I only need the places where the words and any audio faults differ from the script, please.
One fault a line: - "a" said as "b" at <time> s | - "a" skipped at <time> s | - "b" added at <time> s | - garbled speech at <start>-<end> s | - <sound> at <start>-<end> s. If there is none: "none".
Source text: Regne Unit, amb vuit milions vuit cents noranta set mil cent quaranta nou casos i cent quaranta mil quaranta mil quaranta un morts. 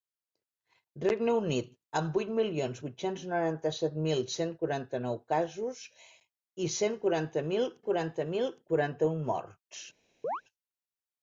- chirp at 10.2-10.4 s